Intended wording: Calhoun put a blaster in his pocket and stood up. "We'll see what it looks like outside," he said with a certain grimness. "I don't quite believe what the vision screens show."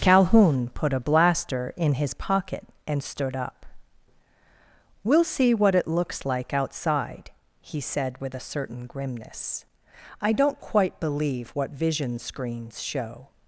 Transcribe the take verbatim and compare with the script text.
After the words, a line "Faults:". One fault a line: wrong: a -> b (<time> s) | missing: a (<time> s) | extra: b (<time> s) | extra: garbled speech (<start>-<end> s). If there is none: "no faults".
Calhoun put a blaster in his pocket and stood up. "We'll see what it looks like outside," he said with a certain grimness. "I don't quite believe what vision screens show."
Faults:
missing: the (11.7 s)